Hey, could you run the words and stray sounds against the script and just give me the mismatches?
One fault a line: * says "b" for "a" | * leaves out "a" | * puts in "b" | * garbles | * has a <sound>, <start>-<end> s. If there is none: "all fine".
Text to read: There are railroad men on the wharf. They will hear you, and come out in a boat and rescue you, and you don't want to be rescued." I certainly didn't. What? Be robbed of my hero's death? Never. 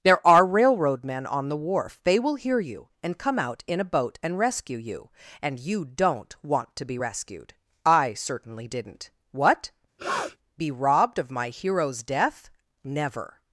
* has a sniff, 10.0-10.4 s